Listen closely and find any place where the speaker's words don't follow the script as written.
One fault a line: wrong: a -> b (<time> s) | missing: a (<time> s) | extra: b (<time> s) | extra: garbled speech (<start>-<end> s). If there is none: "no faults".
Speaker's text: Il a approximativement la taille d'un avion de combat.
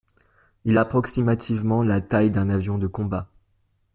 no faults